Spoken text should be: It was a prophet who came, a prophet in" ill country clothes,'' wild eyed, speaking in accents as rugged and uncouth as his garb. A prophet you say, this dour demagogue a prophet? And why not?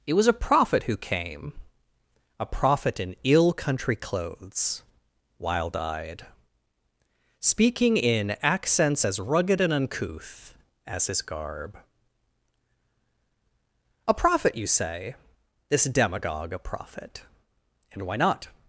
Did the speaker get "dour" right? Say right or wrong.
wrong